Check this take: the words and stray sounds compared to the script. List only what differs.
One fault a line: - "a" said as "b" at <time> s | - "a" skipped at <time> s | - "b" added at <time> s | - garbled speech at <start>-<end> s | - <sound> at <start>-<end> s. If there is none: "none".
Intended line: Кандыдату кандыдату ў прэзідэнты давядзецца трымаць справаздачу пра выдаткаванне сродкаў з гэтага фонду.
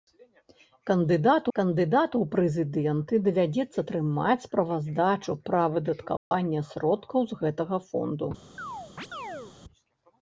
- dropout at 6.2-6.3 s
- chirp at 8.6-9.5 s